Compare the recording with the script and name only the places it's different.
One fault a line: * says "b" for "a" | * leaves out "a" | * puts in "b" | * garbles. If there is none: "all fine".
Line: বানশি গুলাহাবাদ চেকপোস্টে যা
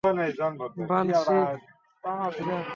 * leaves out "গুলাহাবাদ চেকপোস্টে"